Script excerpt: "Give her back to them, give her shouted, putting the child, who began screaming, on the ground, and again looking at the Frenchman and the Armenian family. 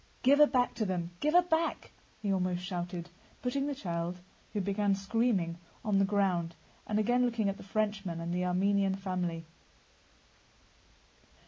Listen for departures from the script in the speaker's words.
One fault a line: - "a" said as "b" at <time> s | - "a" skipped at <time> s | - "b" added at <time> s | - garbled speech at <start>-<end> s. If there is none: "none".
- "back he almost" added at 1.4 s